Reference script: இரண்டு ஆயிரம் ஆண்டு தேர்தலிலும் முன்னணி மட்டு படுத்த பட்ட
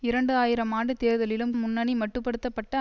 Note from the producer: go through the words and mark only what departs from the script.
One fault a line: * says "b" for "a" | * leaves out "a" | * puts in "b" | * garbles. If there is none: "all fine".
all fine